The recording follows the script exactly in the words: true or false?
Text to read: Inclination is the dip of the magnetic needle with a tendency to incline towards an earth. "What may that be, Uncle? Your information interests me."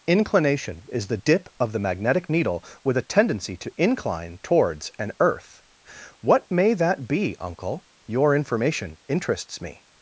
true